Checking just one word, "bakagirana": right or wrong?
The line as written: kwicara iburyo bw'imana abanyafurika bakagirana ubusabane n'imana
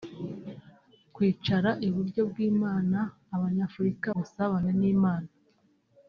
wrong